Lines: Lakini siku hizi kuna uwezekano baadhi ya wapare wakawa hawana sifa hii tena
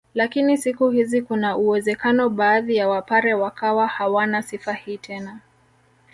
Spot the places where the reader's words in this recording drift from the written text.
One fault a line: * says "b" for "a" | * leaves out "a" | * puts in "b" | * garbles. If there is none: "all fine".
all fine